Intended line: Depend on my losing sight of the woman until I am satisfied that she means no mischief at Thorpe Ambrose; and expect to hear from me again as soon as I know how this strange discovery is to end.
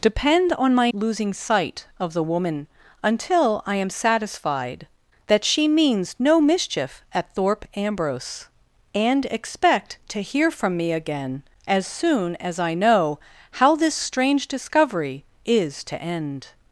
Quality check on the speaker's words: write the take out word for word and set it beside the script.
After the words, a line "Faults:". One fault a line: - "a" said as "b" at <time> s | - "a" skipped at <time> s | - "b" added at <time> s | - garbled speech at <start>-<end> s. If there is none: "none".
Depend on my losing sight of the woman until I am satisfied that she means no mischief at Thorpe Ambrose; and expect to hear from me again as soon as I know how this strange discovery is to end.
Faults:
none